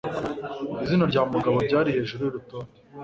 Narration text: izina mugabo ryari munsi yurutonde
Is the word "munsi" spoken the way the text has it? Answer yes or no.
no